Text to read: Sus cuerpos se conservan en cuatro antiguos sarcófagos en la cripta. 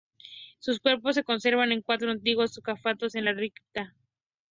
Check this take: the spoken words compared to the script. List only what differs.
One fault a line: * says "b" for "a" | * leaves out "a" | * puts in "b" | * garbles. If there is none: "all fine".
all fine